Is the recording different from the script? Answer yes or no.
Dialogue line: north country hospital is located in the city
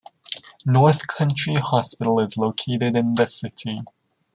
no